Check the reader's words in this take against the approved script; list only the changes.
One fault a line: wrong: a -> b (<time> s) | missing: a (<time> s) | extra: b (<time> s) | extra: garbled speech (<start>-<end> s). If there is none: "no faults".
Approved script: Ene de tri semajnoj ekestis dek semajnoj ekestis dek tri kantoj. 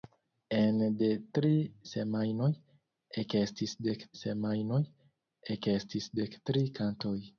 no faults